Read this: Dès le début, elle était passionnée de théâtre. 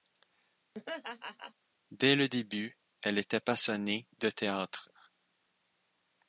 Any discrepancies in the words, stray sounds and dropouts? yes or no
yes